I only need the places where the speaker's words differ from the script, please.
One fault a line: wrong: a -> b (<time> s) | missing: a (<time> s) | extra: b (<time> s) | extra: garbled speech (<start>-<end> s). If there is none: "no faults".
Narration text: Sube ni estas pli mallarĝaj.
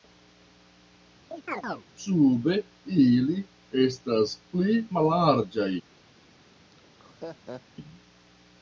wrong: ni -> ili (3.1 s)